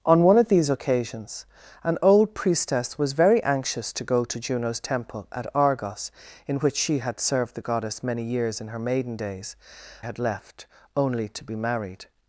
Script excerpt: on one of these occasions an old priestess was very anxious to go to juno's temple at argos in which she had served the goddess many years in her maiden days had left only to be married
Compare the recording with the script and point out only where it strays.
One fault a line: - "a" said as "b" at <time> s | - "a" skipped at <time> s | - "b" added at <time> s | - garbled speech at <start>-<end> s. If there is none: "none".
none